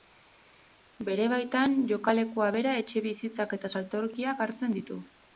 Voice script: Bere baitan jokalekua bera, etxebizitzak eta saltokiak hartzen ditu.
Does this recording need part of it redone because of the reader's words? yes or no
no